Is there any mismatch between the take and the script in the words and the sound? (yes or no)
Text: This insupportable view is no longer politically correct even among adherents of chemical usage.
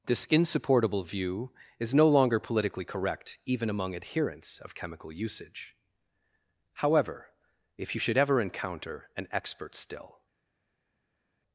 yes